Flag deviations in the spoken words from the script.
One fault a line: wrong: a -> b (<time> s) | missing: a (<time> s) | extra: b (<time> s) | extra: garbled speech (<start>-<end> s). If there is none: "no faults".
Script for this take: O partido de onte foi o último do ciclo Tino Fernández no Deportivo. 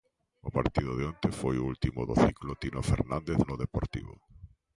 no faults